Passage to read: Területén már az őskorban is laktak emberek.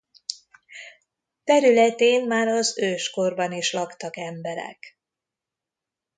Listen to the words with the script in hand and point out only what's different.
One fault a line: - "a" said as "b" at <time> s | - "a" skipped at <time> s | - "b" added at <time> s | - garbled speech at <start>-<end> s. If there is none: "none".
none